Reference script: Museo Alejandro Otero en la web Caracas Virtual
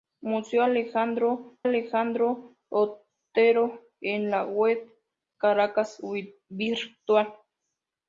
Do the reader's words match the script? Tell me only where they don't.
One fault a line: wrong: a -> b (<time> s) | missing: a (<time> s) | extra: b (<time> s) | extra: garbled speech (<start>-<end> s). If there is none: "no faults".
extra: Alejandro (1.6 s)